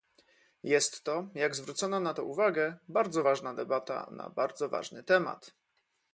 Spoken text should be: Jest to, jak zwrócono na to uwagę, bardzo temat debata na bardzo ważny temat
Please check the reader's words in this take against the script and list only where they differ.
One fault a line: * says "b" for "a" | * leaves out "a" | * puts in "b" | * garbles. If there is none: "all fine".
* says "ważna" for "temat"